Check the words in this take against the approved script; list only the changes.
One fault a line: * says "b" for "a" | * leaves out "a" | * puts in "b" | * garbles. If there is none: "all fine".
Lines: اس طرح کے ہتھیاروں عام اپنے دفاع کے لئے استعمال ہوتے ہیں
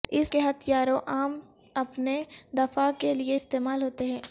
* leaves out "طرح"